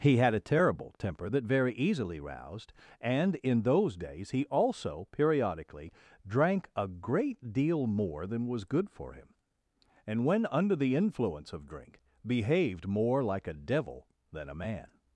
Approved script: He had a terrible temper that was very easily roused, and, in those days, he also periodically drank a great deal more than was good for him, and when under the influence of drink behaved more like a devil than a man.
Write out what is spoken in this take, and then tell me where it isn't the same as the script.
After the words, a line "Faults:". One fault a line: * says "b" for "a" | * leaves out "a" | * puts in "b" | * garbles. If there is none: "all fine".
He had a terrible temper that very easily roused, and, in those days, he also periodically drank a great deal more than was good for him, and when under the influence of drink behaved more like a devil than a man.
Faults:
* leaves out "was"